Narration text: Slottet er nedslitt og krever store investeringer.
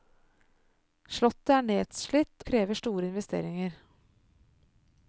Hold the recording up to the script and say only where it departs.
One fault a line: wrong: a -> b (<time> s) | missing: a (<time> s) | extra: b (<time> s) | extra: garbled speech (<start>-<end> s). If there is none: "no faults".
missing: og (2.5 s)